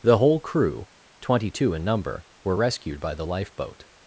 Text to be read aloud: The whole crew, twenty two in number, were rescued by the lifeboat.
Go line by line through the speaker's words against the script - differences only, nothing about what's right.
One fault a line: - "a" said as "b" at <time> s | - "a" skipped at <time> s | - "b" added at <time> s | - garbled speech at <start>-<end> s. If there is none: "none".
none